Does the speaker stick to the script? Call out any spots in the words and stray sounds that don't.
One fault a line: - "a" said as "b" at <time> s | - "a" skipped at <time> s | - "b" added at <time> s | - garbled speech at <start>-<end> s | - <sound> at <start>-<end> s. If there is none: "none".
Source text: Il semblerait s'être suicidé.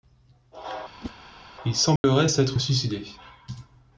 - whoosh at 1.0-1.1 s
- dropout at 2.0-2.0 s